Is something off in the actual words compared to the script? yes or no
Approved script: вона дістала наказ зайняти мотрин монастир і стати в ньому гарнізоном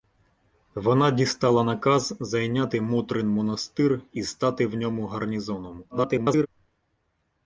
yes